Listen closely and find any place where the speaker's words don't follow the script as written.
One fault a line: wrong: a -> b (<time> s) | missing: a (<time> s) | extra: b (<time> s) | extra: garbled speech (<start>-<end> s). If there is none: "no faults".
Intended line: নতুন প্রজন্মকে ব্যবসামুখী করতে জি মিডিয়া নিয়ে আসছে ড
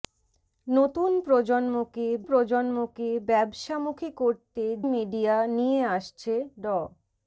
extra: প্রজন্মকে (2.3 s)
missing: জি (4.6 s)